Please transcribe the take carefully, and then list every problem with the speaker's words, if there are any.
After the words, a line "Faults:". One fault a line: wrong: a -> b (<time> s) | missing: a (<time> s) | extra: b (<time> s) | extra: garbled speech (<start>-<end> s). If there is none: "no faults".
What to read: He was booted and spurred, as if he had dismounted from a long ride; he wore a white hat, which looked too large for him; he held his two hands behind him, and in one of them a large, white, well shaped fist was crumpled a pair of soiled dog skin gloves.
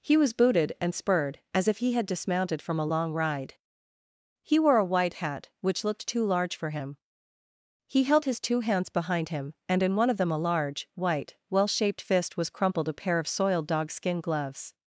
He was booted and spurred, as if he had dismounted from a long ride; he wore a white hat, which looked too large for him; he held his two hands behind him, and in one of them a large, white, well shaped fist was crumpled a pair of soiled dog skin gloves.
Faults:
no faults